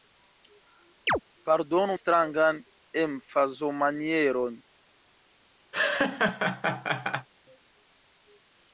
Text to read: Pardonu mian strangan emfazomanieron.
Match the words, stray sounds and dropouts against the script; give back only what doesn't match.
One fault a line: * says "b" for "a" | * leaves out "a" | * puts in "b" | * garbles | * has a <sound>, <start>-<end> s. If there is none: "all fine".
* has a chirp, 1.1-1.2 s
* leaves out "mian"
* has a laugh, 5.7-7.3 s